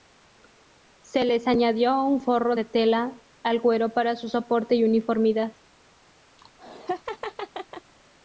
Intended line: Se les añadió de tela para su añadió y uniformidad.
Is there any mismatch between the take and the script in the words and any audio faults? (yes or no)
yes